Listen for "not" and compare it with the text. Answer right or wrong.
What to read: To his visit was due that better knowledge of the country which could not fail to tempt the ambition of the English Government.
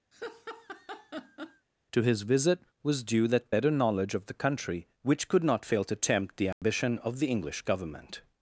right